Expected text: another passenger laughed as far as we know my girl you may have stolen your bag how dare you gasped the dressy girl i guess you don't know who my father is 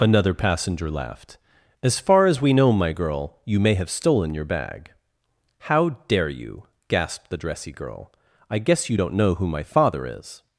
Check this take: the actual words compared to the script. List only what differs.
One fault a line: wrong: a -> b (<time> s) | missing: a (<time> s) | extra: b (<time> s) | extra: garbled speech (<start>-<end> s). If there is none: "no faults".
no faults